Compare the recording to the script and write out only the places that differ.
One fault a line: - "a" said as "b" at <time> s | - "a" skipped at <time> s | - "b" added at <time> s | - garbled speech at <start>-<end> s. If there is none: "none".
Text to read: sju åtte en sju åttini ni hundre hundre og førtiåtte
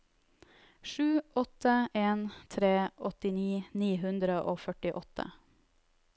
- "sju" said as "tre" at 2.5 s
- "hundre" skipped at 4.4 s